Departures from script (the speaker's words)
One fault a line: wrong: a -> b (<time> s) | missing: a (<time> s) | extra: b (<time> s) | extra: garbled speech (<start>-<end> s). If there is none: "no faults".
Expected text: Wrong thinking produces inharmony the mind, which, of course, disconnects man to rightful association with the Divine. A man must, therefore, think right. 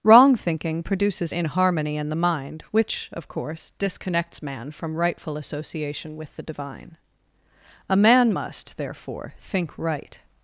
extra: in (2.0 s)
wrong: to -> from (4.7 s)